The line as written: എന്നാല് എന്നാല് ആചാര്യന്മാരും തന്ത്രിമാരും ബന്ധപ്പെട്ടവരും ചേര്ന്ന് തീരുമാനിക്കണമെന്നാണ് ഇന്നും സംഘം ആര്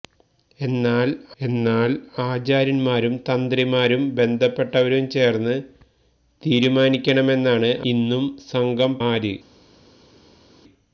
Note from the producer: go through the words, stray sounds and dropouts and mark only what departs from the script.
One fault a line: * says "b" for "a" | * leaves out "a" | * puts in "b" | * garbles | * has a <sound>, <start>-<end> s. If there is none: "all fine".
all fine